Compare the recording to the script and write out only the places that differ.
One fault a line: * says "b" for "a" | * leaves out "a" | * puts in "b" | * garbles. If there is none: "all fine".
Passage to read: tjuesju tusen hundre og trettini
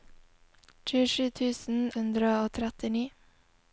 all fine